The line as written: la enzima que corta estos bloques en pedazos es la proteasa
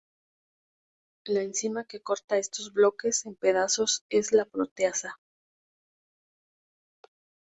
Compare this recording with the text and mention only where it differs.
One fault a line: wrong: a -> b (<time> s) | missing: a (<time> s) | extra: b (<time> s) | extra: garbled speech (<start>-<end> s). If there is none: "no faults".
no faults